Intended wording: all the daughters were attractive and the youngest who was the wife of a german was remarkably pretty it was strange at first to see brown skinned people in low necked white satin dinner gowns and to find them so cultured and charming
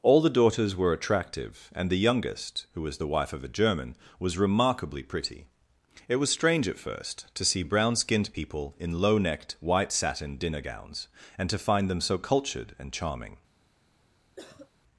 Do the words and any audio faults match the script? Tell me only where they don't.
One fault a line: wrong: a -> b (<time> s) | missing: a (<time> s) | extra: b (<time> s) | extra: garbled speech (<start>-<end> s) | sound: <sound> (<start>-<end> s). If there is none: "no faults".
sound: cough (14.4-14.7 s)